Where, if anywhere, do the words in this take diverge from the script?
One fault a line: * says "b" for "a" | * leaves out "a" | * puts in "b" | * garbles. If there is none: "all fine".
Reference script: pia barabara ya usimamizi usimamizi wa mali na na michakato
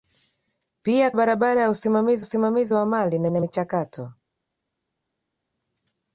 all fine